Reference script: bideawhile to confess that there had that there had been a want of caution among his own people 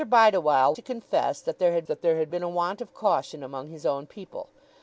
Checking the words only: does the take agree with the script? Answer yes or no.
yes